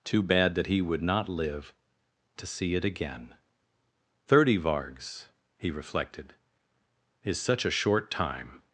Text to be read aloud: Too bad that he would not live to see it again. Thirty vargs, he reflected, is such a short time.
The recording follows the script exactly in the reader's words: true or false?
true